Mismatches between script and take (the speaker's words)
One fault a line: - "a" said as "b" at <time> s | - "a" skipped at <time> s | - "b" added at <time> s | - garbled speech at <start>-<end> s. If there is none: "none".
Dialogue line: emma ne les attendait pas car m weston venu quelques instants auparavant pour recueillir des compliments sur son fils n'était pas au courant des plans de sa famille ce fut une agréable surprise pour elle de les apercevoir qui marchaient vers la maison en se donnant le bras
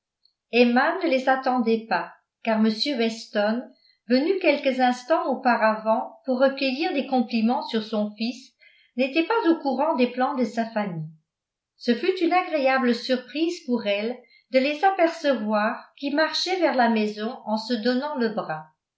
none